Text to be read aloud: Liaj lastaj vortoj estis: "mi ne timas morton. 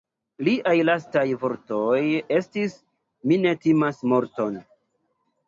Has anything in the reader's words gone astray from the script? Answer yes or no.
no